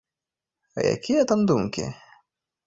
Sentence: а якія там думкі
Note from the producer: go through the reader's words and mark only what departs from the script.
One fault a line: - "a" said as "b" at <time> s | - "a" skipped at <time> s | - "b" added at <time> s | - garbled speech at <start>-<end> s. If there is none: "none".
none